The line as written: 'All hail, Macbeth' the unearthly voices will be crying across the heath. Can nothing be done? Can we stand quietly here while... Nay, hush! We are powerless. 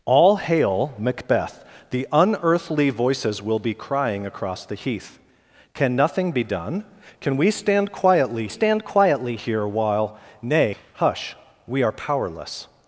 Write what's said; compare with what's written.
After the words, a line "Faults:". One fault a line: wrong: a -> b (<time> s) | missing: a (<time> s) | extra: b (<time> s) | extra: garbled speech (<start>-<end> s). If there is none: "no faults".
'All hail, Macbeth' the unearthly voices will be crying across the heath. Can nothing be done? Can we stand quietly stand quietly here while... Nay, hush! We are powerless.
Faults:
extra: stand quietly (8.5 s)